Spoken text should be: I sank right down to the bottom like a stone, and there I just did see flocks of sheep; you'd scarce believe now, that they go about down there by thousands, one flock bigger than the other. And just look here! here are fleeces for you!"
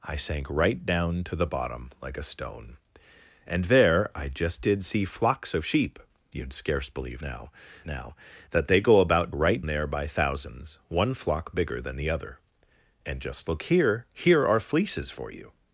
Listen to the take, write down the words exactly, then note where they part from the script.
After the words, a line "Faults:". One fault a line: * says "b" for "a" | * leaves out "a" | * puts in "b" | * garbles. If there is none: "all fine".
I sank right down to the bottom like a stone, and there I just did see flocks of sheep; you'd scarce believe now now, that they go about right there by thousands, one flock bigger than the other. And just look here! here are fleeces for you!"
Faults:
* puts in "now"
* says "right" for "down"